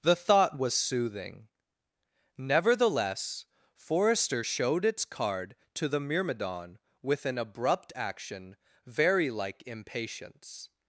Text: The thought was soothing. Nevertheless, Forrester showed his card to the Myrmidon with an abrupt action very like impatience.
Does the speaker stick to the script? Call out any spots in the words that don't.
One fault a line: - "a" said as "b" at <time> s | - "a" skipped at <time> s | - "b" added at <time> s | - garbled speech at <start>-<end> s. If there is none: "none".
- "his" said as "its" at 4.9 s